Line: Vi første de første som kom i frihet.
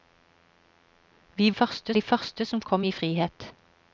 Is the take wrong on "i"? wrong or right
right